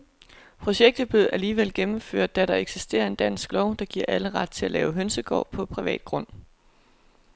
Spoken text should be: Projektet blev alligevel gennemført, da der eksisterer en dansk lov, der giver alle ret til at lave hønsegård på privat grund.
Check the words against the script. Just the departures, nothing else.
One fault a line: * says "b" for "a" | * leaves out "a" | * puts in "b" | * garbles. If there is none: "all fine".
all fine